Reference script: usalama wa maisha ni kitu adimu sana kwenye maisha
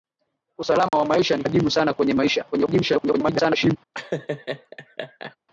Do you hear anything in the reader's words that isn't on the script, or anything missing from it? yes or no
yes